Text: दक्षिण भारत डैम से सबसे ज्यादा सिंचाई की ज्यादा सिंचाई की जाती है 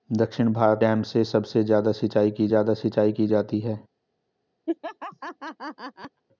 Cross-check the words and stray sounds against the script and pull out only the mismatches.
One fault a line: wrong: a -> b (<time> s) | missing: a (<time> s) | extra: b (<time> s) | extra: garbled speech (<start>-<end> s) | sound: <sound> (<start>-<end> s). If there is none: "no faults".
sound: laugh (4.7-6.2 s)